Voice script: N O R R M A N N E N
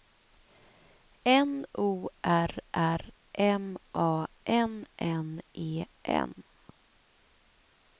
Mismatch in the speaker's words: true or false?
false